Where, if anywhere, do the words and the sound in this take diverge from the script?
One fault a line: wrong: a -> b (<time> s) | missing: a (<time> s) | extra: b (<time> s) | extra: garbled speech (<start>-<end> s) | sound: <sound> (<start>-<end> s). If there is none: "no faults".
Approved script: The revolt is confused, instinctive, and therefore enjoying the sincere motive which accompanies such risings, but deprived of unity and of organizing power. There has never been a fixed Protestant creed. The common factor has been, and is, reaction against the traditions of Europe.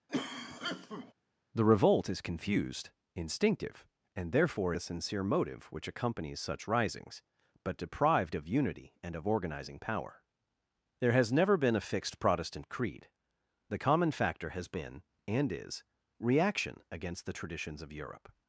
sound: cough (0.1-1.1 s)
missing: enjoying (4.7 s)